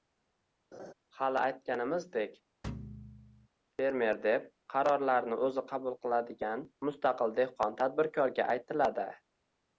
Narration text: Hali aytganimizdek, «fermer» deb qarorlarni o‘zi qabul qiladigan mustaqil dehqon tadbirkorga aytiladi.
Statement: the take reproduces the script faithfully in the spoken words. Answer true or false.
true